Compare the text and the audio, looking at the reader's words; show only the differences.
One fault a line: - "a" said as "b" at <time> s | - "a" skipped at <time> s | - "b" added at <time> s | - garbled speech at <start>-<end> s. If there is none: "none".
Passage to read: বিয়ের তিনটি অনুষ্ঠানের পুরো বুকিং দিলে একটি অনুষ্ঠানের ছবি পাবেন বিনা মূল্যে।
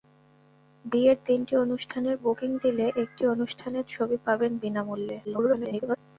- "পুরো" skipped at 2.2 s
- garbled speech at 5.2-6.0 s